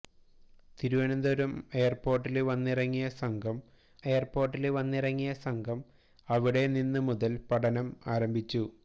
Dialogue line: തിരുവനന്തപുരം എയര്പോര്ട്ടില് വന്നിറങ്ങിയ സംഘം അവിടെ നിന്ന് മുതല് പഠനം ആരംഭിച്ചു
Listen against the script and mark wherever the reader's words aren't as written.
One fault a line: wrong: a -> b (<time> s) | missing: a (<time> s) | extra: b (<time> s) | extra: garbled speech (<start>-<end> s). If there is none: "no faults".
extra: എയര്പോര്ട്ടില് വന്നിറങ്ങിയ സംഘം (4.1 s)